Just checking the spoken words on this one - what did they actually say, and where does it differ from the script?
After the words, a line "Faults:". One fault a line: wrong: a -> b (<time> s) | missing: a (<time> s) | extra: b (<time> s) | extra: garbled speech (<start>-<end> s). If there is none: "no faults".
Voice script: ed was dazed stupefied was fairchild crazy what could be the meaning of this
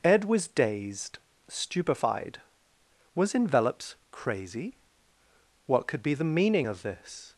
ed was dazed stupefied was envelops crazy what could be the meaning of this
Faults:
wrong: fairchild -> envelops (3.4 s)